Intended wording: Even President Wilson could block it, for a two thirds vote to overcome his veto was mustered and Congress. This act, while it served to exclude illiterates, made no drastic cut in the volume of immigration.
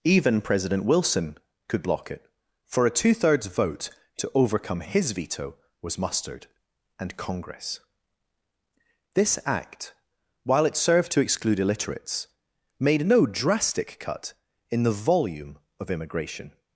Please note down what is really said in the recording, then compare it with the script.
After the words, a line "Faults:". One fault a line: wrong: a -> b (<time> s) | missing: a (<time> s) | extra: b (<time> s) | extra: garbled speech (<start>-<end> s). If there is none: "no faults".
Even President Wilson could block it, for a two thirds vote to overcome his veto was mustered and Congress. This act, while it served to exclude illiterates, made no drastic cut in the volume of immigration.
Faults:
no faults